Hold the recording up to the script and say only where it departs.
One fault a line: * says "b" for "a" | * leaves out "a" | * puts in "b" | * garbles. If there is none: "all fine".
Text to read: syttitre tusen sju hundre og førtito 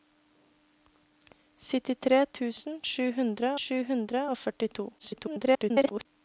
* puts in "sju hundre"
* garbles